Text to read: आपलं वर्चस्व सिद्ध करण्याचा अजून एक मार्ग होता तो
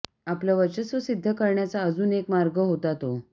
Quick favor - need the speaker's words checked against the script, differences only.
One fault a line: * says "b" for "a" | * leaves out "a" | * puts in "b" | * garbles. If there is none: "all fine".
all fine